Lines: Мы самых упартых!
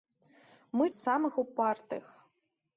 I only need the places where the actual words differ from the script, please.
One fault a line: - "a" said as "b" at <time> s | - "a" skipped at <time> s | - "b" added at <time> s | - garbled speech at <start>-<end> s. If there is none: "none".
none